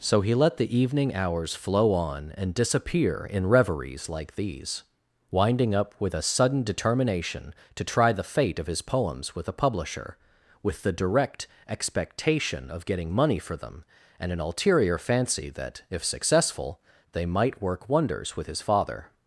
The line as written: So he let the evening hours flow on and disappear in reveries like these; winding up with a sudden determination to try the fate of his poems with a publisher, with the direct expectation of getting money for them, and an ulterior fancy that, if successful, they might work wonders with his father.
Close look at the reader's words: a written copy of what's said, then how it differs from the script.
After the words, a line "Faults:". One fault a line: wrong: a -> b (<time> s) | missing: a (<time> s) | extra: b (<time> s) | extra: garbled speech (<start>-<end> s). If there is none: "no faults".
So he let the evening hours flow on and disappear in reveries like these; winding up with a sudden determination to try the fate of his poems with a publisher, with the direct expectation of getting money for them, and an ulterior fancy that, if successful, they might work wonders with his father.
Faults:
no faults